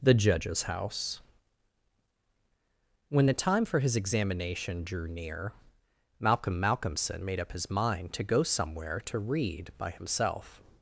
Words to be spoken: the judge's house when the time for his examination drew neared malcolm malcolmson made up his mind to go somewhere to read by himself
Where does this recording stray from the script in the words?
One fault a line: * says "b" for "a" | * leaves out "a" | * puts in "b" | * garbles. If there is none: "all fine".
* says "near" for "neared"